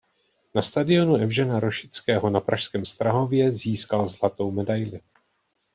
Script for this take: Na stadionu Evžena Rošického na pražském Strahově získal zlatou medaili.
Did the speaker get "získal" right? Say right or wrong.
right